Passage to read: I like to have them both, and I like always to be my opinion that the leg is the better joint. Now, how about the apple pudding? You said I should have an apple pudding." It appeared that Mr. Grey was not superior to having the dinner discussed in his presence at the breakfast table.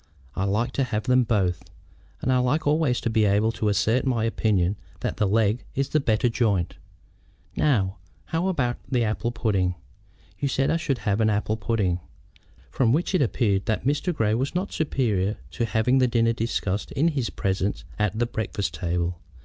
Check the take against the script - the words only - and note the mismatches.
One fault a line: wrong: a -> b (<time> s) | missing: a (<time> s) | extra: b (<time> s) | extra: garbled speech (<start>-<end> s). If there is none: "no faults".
extra: able to assert (3.2 s)
extra: From which (12.7 s)